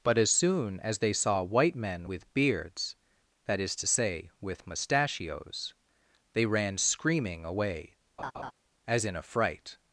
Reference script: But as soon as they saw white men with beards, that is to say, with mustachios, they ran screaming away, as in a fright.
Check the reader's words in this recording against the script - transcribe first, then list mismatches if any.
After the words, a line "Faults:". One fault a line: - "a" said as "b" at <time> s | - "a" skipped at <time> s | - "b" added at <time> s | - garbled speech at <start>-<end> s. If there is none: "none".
But as soon as they saw white men with beards, that is to say, with mustachios, they ran screaming away, as in a fright.
Faults:
none